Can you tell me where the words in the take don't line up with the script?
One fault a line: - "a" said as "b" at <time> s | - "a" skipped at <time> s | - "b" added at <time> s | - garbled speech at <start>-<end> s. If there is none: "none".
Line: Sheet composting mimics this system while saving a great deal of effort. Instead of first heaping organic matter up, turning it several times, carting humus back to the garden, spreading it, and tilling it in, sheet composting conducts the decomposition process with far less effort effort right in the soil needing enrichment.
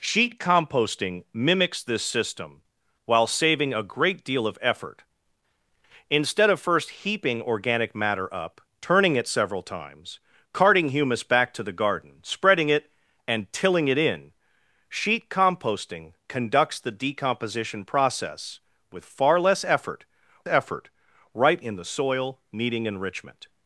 none